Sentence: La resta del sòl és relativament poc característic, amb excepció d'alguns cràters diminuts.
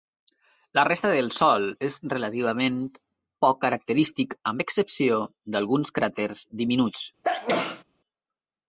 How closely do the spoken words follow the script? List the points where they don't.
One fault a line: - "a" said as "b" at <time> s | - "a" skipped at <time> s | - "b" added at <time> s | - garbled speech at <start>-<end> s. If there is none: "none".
none